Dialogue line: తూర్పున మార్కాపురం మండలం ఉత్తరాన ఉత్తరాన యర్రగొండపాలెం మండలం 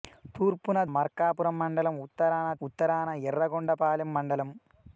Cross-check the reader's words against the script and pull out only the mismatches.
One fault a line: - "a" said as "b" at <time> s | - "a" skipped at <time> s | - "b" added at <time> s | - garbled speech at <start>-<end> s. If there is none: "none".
none